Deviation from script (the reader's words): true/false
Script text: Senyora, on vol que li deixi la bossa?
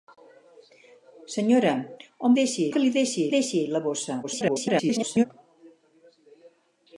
true